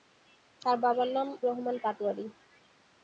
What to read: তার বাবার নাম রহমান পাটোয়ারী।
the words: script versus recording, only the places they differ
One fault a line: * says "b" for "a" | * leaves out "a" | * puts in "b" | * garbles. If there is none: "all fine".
all fine